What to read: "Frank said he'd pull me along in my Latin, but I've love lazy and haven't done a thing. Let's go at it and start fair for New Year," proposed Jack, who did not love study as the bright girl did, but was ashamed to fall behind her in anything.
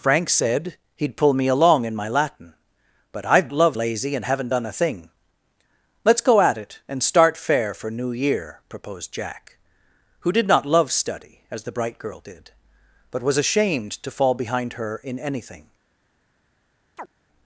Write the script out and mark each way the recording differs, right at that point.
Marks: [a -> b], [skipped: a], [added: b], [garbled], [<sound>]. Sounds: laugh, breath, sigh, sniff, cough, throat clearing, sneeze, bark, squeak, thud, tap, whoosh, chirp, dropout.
"Frank said he'd pull me along in my Latin, but I've love lazy and haven't done a thing. Let's go at it and start fair for New Year," proposed Jack, who did not love study as the bright girl did, but was ashamed to fall behind her in anything. [chirp]